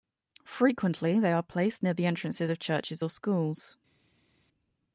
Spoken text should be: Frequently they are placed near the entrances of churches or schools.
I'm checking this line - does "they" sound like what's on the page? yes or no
yes